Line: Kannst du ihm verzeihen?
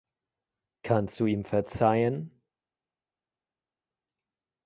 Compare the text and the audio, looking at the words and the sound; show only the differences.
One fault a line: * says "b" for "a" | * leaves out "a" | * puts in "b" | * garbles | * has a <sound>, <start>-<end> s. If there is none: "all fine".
all fine